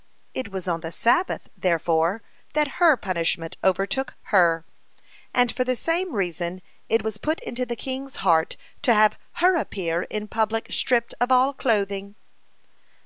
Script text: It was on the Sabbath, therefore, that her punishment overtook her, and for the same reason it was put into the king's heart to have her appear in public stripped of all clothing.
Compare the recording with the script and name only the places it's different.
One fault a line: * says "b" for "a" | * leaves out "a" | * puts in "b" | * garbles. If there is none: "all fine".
all fine